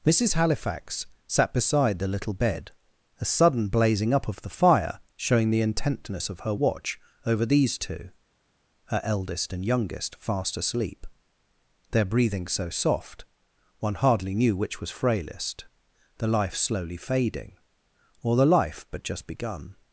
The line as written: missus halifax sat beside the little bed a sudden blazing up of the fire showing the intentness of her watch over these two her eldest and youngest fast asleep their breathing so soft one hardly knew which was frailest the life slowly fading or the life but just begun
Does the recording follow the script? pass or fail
pass